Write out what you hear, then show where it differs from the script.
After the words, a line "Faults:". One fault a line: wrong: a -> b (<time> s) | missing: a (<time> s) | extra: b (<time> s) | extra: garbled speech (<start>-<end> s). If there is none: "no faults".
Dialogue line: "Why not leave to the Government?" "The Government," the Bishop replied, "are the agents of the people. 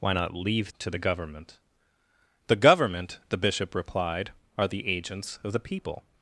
"Why not leave to the Government?" "The Government," the Bishop replied, "are the agents of the people.
Faults:
no faults